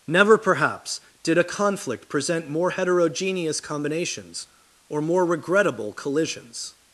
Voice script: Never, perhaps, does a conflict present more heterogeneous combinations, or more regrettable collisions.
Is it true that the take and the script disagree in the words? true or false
true